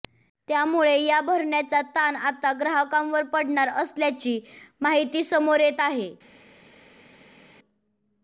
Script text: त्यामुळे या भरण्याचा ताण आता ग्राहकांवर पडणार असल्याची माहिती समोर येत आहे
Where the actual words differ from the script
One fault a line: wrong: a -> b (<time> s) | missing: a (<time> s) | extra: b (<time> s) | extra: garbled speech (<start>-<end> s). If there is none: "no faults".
no faults